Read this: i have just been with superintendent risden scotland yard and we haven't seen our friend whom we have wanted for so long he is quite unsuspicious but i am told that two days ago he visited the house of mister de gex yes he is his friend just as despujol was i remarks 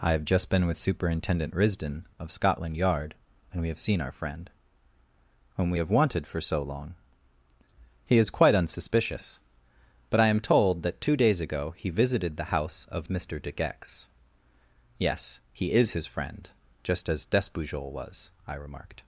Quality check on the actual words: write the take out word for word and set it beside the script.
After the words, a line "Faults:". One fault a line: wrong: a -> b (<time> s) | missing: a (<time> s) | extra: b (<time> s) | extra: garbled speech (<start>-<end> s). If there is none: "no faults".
i have just been with superintendent risden of scotland yard and we have seen our friend whom we have wanted for so long he is quite unsuspicious but i am told that two days ago he visited the house of mister de gex yes he is his friend just as despujol was i remarked
Faults:
extra: of (2.2 s)
wrong: haven't -> have (3.7 s)
wrong: remarks -> remarked (18.5 s)